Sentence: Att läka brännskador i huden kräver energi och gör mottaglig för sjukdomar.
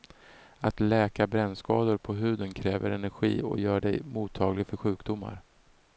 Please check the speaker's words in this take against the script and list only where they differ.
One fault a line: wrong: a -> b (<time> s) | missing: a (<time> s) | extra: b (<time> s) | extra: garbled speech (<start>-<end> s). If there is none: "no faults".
wrong: i -> på (2.0 s)
extra: dig (3.8 s)